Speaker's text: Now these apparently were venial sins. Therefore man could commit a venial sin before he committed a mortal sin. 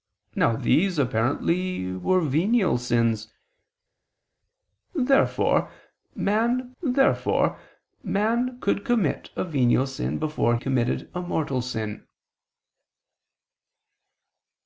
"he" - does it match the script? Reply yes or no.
no